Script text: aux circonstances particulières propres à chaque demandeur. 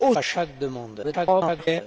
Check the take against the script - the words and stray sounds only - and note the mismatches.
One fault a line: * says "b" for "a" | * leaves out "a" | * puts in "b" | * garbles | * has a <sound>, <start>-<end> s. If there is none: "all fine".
* leaves out "circonstances particulières propres"
* garbles